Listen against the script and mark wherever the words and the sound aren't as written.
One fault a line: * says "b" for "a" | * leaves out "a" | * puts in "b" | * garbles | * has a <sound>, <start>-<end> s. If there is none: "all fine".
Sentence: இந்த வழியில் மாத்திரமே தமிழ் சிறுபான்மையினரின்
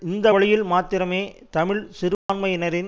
* has a dropout, 2.1-2.3 s